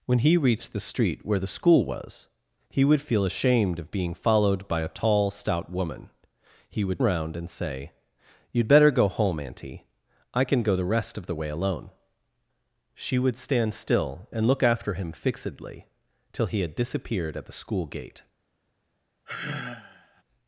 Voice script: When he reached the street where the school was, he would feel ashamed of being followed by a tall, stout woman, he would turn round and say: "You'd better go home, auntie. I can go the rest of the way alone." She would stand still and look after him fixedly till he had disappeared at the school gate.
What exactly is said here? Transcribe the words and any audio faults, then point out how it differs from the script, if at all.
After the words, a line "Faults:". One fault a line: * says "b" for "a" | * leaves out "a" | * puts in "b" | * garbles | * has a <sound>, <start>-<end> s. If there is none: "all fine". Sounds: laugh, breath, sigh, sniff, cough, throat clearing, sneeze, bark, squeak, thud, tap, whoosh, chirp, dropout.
When he reached the street where the school was, he would feel ashamed of being followed by a tall, stout woman, he would round and say: "You'd better go home, auntie. I can go the rest of the way alone." She would stand still and look after him fixedly till he had disappeared at the school gate.
Faults:
* leaves out "turn"
* has a sigh, 19.3-20.2 s